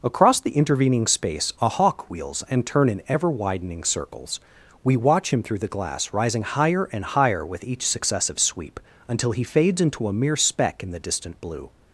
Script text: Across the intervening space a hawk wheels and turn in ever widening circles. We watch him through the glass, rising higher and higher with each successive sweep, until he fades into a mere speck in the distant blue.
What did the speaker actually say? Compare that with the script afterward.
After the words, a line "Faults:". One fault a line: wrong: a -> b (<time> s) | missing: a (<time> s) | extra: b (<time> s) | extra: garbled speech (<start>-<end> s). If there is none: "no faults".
Across the intervening space a hawk wheels and turn in ever widening circles. We watch him through the glass, rising higher and higher with each successive sweep, until he fades into a mere speck in the distant blue.
Faults:
no faults